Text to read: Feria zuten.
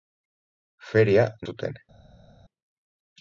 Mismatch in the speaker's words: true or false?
false